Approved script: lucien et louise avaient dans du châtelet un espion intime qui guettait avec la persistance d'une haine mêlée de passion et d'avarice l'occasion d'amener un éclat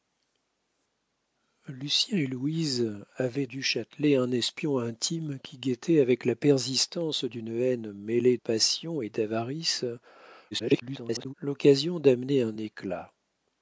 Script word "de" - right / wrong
wrong